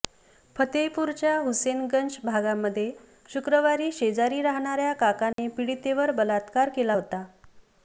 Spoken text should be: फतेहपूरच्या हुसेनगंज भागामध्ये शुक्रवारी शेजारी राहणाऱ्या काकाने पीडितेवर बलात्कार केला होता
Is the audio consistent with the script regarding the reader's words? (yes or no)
yes